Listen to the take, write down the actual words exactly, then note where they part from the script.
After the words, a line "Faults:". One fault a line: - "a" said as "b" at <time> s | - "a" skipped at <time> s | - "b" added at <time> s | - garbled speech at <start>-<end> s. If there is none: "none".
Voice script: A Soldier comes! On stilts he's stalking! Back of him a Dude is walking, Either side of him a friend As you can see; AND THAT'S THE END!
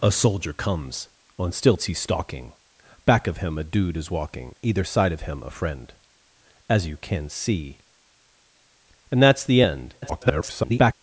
A Soldier comes! On stilts he's stalking! Back of him a Dude is walking, Either side of him a friend As you can see; AND THAT'S THE END! [garbled]
Faults:
- garbled speech at 10.0-10.9 s